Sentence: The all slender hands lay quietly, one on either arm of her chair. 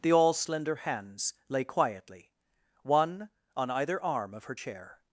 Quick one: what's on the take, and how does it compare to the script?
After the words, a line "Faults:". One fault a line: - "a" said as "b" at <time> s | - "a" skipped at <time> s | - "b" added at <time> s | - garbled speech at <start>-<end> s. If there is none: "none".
The all slender hands lay quietly, one on either arm of her chair.
Faults:
none